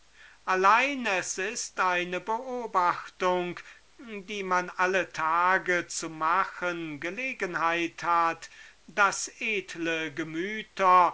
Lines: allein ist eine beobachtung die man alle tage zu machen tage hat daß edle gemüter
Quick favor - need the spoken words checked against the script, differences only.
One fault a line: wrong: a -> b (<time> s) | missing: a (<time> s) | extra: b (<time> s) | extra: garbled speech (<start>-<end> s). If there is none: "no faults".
extra: es (1.1 s)
wrong: tage -> gelegenheit (7.0 s)